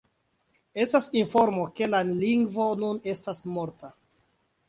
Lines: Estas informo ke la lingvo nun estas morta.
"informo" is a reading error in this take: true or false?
false